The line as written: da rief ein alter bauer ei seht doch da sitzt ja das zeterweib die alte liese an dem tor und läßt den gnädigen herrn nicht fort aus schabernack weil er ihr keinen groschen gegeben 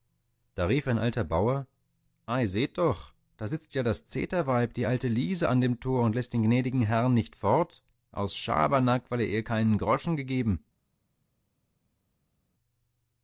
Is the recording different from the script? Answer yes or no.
no